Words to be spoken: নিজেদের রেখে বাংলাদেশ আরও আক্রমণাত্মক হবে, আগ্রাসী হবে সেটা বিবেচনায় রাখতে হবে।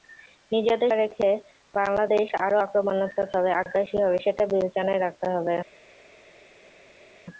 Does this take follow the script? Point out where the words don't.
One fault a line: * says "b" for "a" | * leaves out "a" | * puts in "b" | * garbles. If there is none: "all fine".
all fine